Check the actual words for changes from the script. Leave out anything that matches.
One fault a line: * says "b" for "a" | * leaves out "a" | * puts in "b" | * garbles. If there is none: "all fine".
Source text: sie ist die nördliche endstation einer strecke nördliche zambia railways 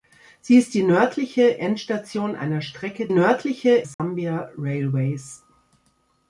all fine